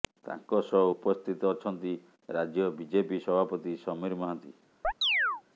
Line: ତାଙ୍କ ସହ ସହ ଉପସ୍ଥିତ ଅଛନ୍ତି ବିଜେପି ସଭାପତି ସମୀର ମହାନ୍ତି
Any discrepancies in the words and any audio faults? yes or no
yes